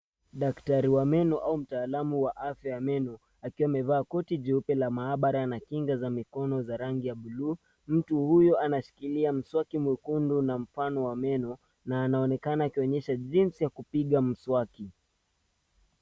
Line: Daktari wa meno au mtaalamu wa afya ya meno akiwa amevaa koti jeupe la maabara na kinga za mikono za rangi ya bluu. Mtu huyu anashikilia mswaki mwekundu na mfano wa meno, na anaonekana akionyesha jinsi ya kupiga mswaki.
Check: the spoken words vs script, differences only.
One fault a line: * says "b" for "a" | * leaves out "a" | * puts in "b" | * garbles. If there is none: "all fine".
all fine